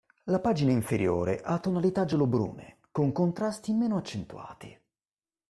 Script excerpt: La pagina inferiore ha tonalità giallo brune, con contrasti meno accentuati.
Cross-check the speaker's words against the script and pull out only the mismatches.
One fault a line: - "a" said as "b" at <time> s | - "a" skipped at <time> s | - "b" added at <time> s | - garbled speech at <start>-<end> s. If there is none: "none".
none